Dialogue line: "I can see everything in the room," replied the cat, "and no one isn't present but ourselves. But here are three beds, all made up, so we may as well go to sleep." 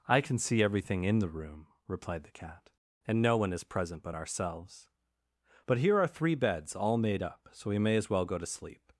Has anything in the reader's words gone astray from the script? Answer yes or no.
yes